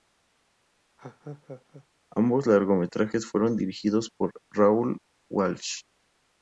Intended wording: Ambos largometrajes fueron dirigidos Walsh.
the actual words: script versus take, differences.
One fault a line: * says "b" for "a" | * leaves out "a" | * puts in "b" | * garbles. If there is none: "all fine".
* puts in "por Raoul"